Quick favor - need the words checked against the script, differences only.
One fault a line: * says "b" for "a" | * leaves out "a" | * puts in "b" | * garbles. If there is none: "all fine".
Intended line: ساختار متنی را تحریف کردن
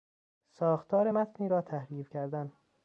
all fine